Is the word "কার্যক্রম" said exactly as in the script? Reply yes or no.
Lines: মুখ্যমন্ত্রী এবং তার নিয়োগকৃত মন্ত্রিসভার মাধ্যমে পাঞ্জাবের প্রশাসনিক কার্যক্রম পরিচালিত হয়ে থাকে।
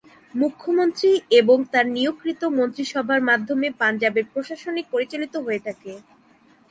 no